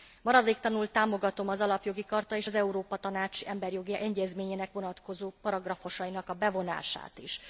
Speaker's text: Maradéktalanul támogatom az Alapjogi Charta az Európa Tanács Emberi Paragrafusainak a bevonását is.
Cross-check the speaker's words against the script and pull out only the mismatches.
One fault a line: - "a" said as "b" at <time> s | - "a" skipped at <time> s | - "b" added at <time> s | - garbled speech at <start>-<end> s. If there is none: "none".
- "és" added at 2.4 s
- "Jogi Egyezményének vonatkozó" added at 3.7 s